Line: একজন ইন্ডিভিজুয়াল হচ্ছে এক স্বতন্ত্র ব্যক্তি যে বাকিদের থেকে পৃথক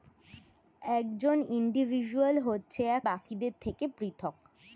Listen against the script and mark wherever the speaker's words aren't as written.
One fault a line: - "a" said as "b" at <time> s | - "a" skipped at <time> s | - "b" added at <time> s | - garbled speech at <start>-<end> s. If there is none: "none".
- "স্বতন্ত্র ব্যক্তি যে" skipped at 3.0 s